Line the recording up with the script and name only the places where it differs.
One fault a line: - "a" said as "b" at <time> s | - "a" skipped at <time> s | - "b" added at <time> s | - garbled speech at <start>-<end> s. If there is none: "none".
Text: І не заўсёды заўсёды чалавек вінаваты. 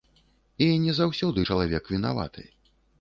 - "заўсёды" skipped at 1.4 s